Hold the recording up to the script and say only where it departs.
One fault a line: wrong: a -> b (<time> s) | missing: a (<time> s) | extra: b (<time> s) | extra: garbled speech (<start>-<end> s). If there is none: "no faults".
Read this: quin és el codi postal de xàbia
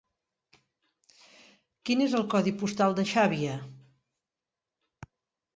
no faults